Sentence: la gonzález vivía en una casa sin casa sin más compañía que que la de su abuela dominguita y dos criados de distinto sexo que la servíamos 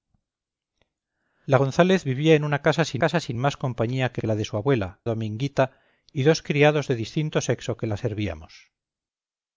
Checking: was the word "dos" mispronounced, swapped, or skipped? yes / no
no